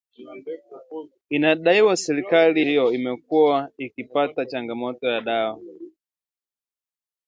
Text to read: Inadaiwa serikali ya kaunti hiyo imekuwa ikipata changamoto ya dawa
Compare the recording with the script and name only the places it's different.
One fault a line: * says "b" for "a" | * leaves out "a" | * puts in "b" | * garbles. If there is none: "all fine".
* leaves out "ya kaunti"